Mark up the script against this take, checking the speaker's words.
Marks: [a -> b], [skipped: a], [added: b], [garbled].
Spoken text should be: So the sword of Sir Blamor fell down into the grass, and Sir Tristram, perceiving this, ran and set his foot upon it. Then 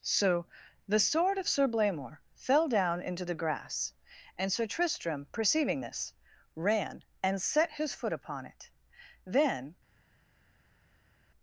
So the sword of Sir Blamor fell down into the grass, and Sir Tristram, perceiving this, ran and set his foot upon it. Then